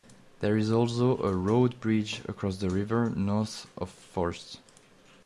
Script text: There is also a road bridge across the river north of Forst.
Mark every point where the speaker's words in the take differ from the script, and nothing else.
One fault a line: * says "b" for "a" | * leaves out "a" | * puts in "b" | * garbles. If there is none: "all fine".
all fine